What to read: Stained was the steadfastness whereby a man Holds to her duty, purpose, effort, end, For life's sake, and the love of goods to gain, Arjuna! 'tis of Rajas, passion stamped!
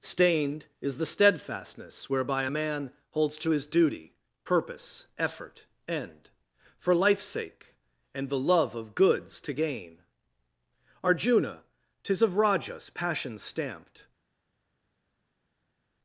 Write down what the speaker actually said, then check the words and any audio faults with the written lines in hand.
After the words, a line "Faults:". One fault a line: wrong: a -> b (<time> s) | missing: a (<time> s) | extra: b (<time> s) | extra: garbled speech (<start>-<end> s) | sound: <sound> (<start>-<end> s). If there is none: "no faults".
Stained is the steadfastness whereby a man Holds to his duty, purpose, effort, end, For life's sake, and the love of goods to gain, Arjuna! 'tis of Rajas, passion stamped!
Faults:
wrong: was -> is (0.8 s)
wrong: her -> his (3.5 s)